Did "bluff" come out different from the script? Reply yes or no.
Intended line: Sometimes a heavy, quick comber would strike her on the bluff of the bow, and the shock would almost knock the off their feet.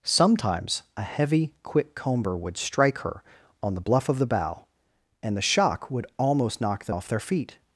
no